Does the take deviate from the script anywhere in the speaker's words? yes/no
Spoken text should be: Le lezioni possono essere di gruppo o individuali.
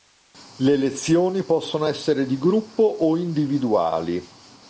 no